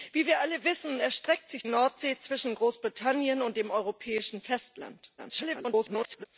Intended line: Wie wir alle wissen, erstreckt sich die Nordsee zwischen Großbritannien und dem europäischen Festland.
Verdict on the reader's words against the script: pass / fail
fail